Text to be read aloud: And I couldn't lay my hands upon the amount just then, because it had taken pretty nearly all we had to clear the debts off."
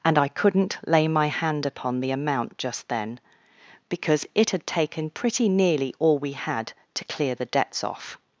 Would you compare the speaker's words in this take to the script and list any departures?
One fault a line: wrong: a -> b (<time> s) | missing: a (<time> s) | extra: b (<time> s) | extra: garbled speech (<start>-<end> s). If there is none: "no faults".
wrong: hands -> hand (1.3 s)